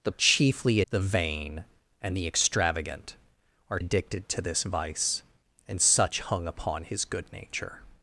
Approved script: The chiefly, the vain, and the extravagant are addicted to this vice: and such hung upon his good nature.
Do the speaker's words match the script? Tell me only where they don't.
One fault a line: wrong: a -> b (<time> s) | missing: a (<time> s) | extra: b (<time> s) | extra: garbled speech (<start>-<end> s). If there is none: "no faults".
no faults